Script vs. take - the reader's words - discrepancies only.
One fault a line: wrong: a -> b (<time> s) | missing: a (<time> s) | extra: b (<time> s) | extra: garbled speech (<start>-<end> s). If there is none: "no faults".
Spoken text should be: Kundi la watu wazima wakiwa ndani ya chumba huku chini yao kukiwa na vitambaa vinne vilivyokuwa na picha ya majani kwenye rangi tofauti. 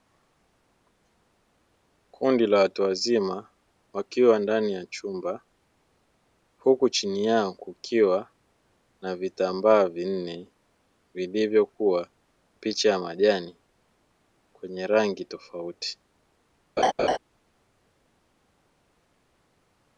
missing: na (12.1 s)